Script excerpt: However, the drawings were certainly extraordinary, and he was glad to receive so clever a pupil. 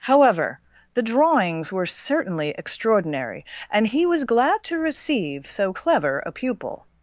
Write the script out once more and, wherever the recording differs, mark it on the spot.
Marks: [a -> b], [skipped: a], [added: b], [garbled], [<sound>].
However, the drawings were certainly extraordinary, and he was glad to receive so clever a pupil.